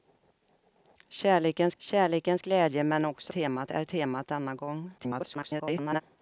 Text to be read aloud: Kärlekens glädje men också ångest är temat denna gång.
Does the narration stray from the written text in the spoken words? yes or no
yes